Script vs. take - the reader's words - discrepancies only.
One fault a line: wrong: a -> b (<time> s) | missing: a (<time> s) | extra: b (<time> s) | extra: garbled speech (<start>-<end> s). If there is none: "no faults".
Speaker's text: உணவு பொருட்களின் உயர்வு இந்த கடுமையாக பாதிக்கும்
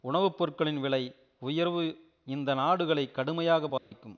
extra: விலை (0.8 s)
extra: நாடுகளை (2.5 s)